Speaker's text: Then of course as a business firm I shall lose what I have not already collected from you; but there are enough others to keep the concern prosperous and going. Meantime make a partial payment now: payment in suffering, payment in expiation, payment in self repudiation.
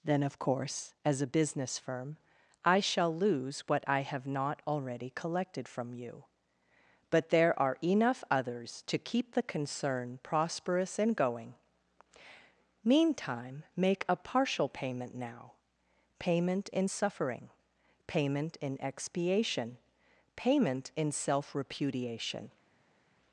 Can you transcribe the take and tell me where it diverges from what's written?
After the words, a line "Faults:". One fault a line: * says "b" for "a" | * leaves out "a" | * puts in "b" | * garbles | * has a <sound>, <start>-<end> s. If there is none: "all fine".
Then of course as a business firm I shall lose what I have not already collected from you; but there are enough others to keep the concern prosperous and going. Meantime make a partial payment now: payment in suffering, payment in expiation, payment in self repudiation.
Faults:
all fine